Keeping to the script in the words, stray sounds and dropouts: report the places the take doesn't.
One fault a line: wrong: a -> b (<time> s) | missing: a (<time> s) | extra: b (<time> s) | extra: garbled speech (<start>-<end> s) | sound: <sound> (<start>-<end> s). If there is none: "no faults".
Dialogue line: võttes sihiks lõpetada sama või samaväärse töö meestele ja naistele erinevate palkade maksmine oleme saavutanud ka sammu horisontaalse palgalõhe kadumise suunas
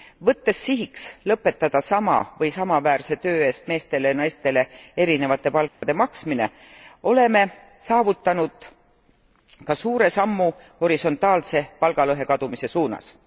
extra: eest (3.5 s)
sound: dropout (5.7-5.8 s)
extra: suure (9.7 s)